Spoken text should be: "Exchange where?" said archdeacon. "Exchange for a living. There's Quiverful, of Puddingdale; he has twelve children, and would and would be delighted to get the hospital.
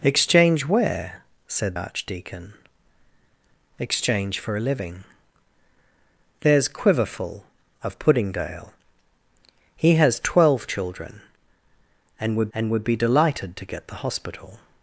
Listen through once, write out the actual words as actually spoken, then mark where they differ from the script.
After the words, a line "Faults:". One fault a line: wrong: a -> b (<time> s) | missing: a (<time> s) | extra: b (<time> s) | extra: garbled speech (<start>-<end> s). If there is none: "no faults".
"Exchange where?" said archdeacon. "Exchange for a living. There's Quiverful, of Puddingdale; he has twelve children, and would and would be delighted to get the hospital.
Faults:
no faults